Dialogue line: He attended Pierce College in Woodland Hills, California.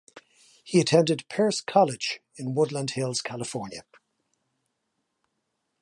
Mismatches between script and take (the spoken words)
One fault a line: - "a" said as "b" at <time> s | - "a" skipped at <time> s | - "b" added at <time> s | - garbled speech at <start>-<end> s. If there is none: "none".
none